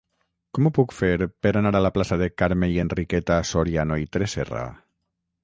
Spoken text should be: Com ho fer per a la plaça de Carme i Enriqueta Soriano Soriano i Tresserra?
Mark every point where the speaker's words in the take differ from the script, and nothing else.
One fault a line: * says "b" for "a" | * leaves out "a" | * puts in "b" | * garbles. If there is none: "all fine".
* puts in "puc"
* puts in "anar"
* leaves out "Soriano"